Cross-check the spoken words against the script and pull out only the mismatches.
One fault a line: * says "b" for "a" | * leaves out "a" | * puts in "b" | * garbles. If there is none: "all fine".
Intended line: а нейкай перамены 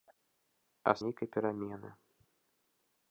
all fine